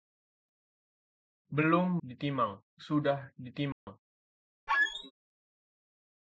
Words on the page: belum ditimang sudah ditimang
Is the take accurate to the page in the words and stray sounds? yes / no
no